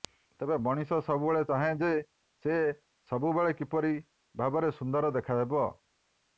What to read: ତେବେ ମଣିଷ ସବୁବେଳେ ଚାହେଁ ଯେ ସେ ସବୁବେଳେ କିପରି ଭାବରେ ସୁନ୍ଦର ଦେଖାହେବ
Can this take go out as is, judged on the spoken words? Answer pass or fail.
pass